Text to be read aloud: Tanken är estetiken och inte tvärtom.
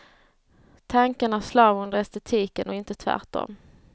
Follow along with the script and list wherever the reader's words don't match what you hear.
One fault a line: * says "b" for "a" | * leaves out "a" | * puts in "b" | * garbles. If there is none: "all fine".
* puts in "slav under"